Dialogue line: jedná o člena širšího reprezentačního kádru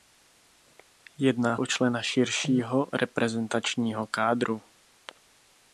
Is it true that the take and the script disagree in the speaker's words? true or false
false